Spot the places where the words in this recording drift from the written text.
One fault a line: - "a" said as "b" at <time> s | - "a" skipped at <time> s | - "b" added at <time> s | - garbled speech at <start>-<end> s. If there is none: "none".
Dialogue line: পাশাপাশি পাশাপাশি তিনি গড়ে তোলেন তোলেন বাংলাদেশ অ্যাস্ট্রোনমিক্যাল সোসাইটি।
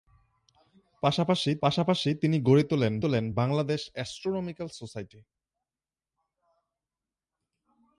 none